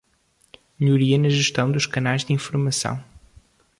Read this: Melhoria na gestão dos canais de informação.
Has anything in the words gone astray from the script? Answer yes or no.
no